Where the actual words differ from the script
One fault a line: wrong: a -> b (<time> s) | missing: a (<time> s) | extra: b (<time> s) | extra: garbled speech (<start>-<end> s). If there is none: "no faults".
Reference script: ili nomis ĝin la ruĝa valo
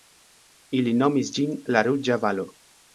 no faults